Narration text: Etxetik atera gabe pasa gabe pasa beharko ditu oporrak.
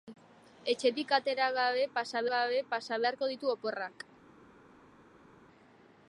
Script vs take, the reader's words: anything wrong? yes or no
no